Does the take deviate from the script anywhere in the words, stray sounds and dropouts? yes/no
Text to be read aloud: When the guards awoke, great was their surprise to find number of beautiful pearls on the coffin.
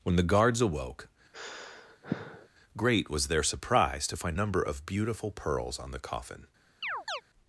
yes